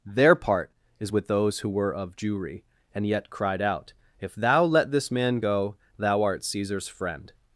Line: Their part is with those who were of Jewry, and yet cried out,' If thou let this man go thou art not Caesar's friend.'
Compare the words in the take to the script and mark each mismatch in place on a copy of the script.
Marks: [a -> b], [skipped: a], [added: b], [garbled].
Their part is with those who were of Jewry, and yet cried out,' If thou let this man go thou art [skipped: not] Caesar's friend.'